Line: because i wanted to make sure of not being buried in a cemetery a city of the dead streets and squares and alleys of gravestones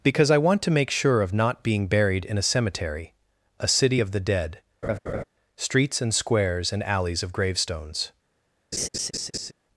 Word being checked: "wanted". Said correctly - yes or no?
no